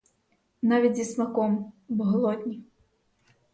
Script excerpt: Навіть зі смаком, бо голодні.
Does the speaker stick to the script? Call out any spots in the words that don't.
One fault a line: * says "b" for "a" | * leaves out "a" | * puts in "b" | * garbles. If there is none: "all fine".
all fine